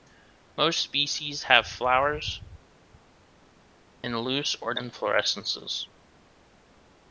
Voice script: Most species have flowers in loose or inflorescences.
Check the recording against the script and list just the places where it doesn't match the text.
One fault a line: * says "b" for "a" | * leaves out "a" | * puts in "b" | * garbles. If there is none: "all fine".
all fine